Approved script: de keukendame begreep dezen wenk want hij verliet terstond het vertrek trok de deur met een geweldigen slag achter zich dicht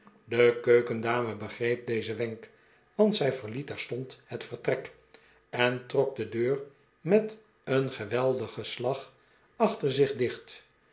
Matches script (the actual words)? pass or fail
fail